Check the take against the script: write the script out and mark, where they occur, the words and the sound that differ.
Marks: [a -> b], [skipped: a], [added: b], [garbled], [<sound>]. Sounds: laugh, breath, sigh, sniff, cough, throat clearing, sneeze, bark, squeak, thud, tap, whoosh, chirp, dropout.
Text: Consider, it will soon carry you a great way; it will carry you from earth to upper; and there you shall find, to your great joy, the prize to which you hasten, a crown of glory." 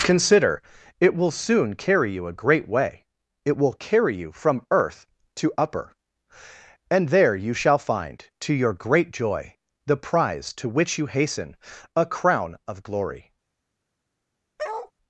Consider, it will soon carry you a great way; it will carry you from earth to upper; and there you shall find, to your great joy, the prize to which you hasten, a crown of glory." [bark]